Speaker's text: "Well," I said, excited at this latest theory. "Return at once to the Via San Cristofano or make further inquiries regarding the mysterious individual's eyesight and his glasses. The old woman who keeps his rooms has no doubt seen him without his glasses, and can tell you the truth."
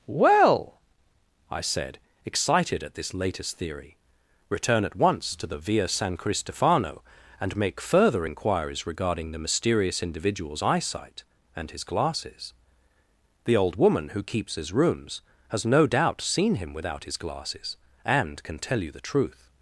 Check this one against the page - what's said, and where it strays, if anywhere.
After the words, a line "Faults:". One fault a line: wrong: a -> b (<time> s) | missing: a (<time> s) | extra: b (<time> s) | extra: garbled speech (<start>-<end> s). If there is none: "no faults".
"Well," I said, excited at this latest theory. "Return at once to the Via San Cristofano and make further inquiries regarding the mysterious individual's eyesight and his glasses. The old woman who keeps his rooms has no doubt seen him without his glasses, and can tell you the truth."
Faults:
wrong: or -> and (7.4 s)